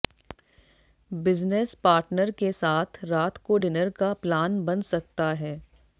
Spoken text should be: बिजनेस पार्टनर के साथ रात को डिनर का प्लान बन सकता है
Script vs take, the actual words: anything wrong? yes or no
no